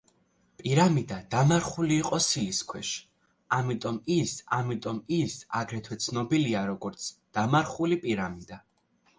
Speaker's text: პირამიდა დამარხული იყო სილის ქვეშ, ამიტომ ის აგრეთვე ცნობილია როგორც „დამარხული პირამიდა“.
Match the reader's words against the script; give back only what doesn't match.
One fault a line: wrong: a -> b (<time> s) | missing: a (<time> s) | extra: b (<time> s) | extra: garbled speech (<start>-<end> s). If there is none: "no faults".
extra: ამიტომ ის (4.6 s)